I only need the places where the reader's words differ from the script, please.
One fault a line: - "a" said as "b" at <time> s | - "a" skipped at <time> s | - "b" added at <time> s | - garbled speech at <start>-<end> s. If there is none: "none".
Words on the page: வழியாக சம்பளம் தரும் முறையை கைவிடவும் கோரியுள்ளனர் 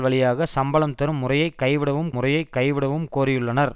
- "முறையை கைவிடவும்" added at 2.1 s